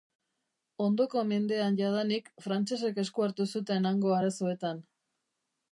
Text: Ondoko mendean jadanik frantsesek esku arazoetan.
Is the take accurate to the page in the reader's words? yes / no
no